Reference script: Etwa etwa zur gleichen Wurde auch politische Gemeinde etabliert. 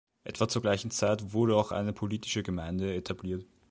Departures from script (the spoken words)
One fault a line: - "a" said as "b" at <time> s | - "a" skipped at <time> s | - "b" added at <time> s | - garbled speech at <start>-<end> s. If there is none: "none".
- "etwa" skipped at 0.5 s
- "Zeit" added at 0.9 s
- "eine" added at 1.7 s